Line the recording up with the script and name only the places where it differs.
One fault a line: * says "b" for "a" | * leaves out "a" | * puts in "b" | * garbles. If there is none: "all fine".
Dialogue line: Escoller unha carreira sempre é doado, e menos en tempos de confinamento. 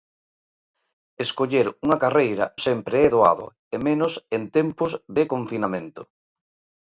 all fine